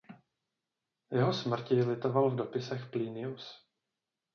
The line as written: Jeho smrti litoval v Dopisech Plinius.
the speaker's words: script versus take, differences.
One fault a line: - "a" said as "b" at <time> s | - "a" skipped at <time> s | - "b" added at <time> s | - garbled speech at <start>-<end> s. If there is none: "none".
none